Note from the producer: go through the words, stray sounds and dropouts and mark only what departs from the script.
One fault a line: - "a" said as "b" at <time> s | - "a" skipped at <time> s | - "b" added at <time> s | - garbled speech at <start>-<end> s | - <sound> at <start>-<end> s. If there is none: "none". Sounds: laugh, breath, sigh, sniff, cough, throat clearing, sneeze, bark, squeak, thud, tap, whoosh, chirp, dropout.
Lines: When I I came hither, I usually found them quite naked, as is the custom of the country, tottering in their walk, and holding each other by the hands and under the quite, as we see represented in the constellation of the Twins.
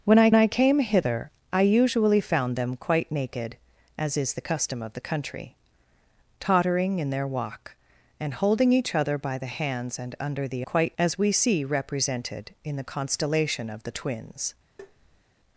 - tap at 14.8-15.3 s